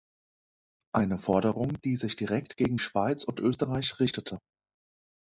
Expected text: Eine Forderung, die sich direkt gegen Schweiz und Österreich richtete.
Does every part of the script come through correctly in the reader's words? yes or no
yes